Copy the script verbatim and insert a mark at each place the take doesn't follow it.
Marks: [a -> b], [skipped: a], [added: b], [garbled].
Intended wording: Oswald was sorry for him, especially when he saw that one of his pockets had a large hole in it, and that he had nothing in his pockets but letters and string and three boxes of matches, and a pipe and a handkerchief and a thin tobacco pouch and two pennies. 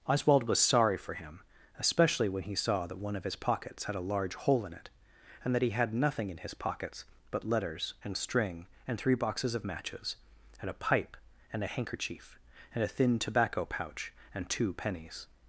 Oswald was sorry for him, especially when he saw that one of his pockets had a large hole in it, and that he had nothing in his pockets but letters and string and three boxes of matches, and a pipe and a handkerchief and a thin tobacco pouch and two pennies.